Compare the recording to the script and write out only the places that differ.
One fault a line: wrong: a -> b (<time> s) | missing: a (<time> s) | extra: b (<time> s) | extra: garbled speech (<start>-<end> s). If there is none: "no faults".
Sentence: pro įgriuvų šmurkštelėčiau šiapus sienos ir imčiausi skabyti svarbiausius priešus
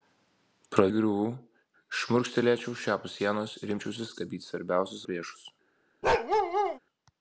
no faults